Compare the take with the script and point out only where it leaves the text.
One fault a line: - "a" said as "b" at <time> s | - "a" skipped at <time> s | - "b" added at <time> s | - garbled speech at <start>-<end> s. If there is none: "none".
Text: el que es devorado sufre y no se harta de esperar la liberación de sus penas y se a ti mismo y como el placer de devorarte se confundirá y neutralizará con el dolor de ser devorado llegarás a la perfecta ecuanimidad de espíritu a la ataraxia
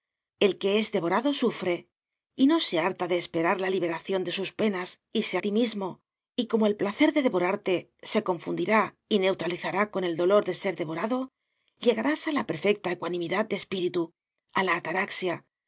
none